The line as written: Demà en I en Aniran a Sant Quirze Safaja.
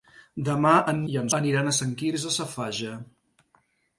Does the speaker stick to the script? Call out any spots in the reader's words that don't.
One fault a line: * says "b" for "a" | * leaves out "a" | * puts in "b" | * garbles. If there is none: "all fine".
all fine